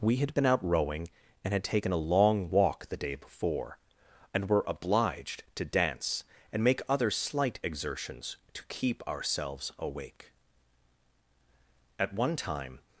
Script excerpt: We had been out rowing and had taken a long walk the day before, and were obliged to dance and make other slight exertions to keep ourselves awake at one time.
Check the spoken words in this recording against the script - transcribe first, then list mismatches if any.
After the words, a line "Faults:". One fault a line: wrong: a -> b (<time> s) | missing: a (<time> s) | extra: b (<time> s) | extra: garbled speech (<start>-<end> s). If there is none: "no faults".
We had been out rowing and had taken a long walk the day before, and were obliged to dance and make other slight exertions to keep ourselves awake at one time.
Faults:
no faults